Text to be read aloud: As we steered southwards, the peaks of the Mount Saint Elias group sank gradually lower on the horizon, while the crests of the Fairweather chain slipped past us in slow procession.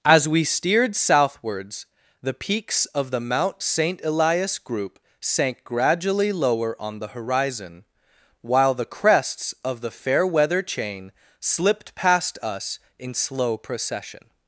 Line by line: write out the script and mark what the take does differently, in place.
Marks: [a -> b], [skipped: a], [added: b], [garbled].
As we steered southwards, the peaks of the Mount Saint Elias group sank gradually lower on the horizon, while the crests of the Fairweather chain slipped past us in slow procession.